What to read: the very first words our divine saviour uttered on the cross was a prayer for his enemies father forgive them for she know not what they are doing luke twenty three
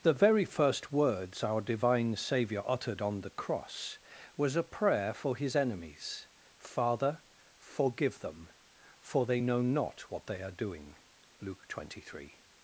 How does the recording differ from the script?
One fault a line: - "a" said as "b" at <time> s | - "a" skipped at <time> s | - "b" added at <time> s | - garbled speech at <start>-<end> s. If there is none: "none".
- "she" said as "they" at 9.3 s